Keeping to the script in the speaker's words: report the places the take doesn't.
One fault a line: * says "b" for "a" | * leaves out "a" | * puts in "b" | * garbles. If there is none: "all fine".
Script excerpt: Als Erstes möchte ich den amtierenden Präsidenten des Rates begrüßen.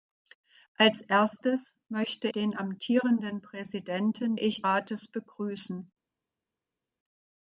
* leaves out "ich"
* says "ich" for "des"